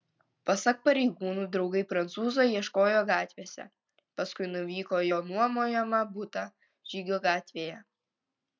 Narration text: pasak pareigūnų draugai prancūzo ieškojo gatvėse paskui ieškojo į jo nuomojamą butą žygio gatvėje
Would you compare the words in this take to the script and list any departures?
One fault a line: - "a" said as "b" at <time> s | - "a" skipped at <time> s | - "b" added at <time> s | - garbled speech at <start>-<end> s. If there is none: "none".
- "ieškojo" said as "nuvyko" at 4.5 s